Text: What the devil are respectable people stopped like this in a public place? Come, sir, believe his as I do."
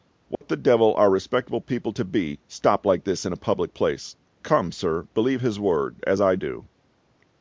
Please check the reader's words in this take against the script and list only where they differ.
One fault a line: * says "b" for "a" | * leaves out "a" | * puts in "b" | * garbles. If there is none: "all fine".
* puts in "to be"
* puts in "word"